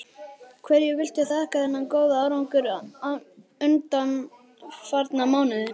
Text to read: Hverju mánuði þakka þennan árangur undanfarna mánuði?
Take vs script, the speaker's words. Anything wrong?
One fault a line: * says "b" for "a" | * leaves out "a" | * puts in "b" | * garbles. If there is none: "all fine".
* says "viltu" for "mánuði"
* puts in "góða"